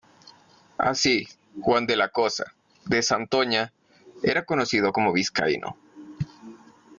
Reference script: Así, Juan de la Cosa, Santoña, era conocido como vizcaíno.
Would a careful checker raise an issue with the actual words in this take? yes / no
yes